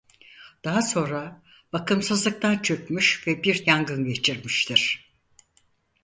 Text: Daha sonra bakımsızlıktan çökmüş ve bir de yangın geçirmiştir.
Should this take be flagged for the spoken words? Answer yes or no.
yes